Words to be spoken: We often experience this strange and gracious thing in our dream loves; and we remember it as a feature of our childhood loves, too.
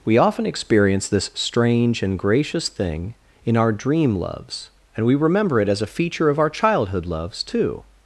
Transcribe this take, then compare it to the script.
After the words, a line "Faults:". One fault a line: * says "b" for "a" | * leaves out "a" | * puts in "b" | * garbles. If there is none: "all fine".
We often experience this strange and gracious thing in our dream loves; and we remember it as a feature of our childhood loves, too.
Faults:
all fine